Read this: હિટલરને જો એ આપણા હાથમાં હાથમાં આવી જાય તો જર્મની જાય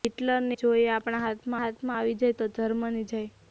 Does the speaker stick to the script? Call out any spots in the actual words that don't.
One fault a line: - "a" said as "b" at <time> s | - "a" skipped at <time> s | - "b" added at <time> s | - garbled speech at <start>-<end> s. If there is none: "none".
none